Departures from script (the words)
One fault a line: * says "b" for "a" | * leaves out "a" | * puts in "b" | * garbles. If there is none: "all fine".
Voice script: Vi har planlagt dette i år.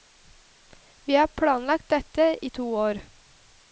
* puts in "to"